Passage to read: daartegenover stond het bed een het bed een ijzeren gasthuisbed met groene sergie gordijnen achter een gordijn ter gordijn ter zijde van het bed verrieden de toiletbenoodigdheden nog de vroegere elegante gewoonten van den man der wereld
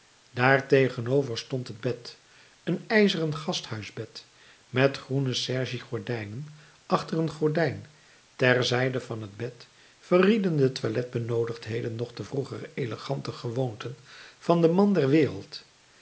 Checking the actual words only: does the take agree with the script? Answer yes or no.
no